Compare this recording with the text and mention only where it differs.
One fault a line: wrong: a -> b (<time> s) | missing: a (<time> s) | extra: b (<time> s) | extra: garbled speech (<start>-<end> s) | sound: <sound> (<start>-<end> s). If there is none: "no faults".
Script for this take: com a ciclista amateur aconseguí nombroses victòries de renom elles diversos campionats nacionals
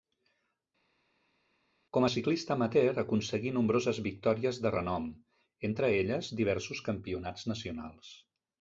extra: entre (5.7 s)